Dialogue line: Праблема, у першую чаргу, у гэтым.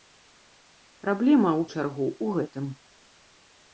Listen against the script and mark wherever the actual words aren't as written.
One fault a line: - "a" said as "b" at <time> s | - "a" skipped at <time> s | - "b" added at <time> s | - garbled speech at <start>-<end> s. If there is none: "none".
- "першую" skipped at 1.7 s